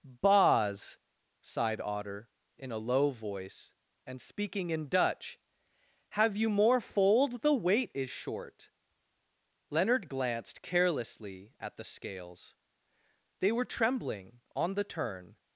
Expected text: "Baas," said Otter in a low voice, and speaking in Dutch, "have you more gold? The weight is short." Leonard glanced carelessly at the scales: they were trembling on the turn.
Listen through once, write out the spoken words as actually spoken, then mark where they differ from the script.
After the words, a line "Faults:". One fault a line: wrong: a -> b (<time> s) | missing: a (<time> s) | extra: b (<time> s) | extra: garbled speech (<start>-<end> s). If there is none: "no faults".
"Baas," sighed Otter in a low voice, and speaking in Dutch, "have you more fold? The weight is short." Leonard glanced carelessly at the scales: they were trembling on the turn.
Faults:
wrong: said -> sighed (1.4 s)
wrong: gold -> fold (6.8 s)